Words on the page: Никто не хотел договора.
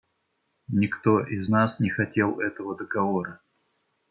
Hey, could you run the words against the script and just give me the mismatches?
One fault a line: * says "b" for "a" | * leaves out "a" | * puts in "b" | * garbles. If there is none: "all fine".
* puts in "из нас"
* puts in "этого"